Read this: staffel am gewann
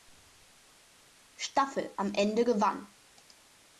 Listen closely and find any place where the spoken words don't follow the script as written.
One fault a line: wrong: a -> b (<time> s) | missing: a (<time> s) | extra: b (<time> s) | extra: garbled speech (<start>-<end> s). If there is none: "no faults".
extra: ende (2.1 s)